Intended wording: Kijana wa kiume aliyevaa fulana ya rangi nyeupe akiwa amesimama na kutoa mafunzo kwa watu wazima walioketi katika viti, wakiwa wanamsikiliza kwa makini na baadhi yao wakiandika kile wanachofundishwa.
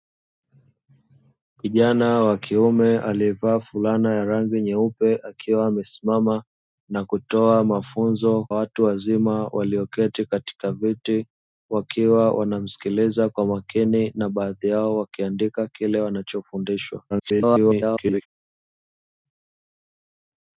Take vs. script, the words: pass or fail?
fail